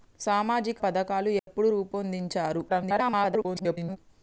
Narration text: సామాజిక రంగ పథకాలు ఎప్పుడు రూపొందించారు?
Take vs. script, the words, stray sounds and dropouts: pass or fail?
fail